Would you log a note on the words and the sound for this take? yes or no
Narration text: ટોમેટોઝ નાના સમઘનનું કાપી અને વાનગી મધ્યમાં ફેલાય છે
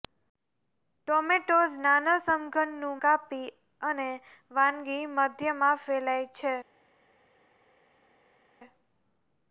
no